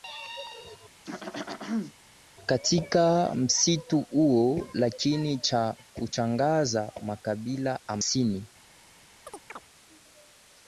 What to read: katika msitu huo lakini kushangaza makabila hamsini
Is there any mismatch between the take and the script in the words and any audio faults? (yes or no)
yes